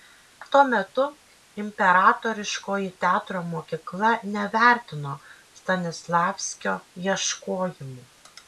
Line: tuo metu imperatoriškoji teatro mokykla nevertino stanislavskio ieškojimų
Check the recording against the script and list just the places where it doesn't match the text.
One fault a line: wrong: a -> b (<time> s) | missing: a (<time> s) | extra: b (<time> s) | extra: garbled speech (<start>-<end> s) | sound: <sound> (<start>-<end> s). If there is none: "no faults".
no faults